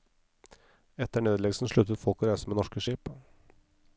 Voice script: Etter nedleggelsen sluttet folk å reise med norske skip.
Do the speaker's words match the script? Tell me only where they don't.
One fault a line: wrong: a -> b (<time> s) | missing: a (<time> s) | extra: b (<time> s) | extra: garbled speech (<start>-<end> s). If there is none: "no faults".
no faults